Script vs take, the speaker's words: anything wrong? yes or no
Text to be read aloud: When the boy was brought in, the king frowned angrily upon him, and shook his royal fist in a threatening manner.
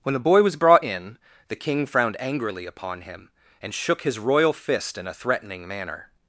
no